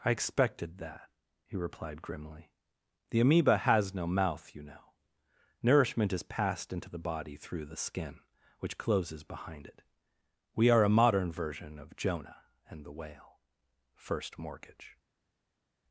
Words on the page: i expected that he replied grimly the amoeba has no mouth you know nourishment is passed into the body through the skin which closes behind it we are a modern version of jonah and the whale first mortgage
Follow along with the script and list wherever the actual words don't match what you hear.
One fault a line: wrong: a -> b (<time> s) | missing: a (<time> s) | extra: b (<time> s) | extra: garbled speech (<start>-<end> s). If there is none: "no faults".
no faults